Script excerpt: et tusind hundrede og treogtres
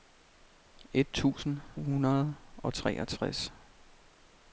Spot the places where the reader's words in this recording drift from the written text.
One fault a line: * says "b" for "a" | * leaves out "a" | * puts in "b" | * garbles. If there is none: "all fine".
all fine